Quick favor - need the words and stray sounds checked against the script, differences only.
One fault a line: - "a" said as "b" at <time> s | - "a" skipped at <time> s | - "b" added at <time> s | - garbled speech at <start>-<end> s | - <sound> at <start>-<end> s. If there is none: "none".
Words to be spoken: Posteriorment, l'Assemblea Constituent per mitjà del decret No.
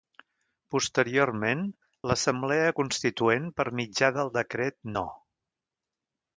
none